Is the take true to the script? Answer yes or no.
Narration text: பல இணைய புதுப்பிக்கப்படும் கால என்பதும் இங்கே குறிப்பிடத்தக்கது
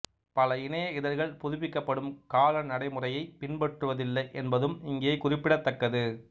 no